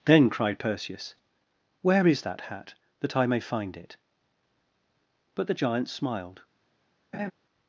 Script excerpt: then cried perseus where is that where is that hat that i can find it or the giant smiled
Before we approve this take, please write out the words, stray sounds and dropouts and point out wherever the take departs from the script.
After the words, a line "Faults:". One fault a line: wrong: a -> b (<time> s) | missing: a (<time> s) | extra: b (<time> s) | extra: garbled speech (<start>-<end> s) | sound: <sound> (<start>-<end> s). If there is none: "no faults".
then cried perseus where is that hat that i may find it but the giant smiled
Faults:
missing: where is that (2.4 s)
wrong: can -> may (3.3 s)
wrong: or -> but (5.3 s)
sound: laugh (7.1-7.3 s)